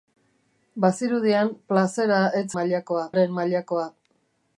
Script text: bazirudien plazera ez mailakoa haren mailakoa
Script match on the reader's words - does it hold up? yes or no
yes